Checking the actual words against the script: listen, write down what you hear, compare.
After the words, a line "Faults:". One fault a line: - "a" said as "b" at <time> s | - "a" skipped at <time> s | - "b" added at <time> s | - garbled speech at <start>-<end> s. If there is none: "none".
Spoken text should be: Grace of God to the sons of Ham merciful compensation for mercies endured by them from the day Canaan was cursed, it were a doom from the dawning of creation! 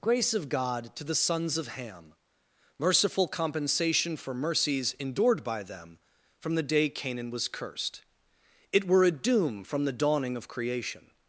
Grace of God to the sons of Ham merciful compensation for mercies endured by them from the day Canaan was cursed, it were a doom from the dawning of creation!
Faults:
none